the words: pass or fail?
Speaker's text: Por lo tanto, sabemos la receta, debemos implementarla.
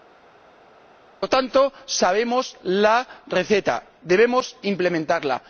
pass